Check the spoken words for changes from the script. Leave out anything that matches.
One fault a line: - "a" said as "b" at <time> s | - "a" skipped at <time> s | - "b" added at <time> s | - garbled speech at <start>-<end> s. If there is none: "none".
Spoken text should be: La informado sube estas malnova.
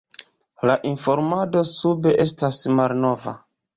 none